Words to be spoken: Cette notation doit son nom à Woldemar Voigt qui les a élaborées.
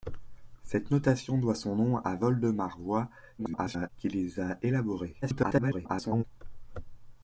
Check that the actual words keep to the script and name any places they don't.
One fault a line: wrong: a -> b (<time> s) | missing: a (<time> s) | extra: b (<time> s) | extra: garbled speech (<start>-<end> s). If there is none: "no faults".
extra: garbled speech (3.4-3.9 s)
extra: garbled speech (5.2-6.2 s)